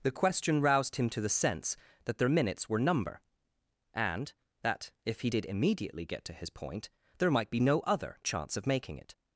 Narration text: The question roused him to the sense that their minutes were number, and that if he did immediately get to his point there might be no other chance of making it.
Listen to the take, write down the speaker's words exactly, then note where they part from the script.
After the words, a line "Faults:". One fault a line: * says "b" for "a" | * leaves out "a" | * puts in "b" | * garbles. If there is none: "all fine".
The question roused him to the sense that their minutes were number, and that if he did immediately get to his point there might be no other chance of making it.
Faults:
all fine